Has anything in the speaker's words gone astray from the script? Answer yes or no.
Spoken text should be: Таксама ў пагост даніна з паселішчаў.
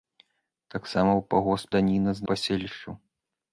no